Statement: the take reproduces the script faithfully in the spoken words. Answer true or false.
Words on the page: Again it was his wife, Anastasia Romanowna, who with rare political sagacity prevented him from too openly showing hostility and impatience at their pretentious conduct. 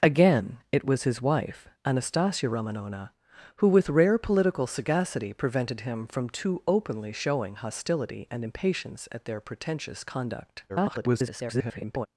false